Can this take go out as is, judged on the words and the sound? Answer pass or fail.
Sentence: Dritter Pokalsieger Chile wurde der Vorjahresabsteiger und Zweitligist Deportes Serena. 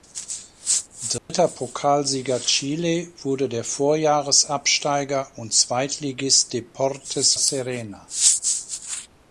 fail